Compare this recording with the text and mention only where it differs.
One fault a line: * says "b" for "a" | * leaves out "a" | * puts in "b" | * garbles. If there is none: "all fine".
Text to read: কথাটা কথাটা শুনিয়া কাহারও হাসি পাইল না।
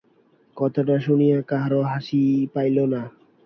* leaves out "কথাটা"